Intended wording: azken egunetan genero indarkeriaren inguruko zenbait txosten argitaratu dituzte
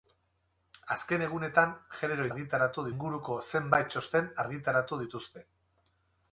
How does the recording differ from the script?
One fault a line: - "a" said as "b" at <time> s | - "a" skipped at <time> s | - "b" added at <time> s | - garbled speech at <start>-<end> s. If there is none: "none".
- "indarkeriaren" said as "argitaratu" at 2.3 s